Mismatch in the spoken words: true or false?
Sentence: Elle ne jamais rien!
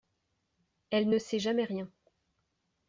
true